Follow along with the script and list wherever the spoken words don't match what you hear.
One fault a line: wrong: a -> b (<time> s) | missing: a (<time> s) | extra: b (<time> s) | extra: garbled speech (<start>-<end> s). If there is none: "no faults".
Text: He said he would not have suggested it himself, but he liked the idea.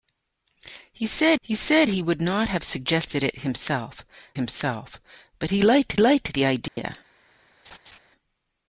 extra: said he (1.5 s)
extra: himself (4.3 s)
extra: liked (6.0 s)